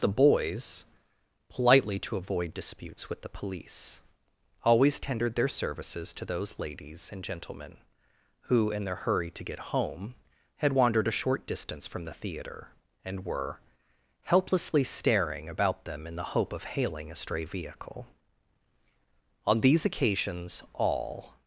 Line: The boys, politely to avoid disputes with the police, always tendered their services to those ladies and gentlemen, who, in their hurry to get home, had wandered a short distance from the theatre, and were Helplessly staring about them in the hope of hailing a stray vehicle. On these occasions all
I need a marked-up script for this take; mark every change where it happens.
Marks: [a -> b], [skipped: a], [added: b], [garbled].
The boys, politely to avoid disputes with the police, always tendered their services to those ladies and gentlemen, who, in their hurry to get home, had wandered a short distance from the theatre, and were Helplessly staring about them in the hope of hailing a stray vehicle. On these occasions all